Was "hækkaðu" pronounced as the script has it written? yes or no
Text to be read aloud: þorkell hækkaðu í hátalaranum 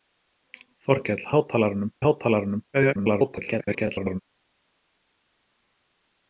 no